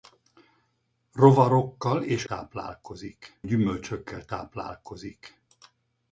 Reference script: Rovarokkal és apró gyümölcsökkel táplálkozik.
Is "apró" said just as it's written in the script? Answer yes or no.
no